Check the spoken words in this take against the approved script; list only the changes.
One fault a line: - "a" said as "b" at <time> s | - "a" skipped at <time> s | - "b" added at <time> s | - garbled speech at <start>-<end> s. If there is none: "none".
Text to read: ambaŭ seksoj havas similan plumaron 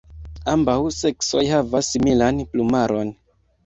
none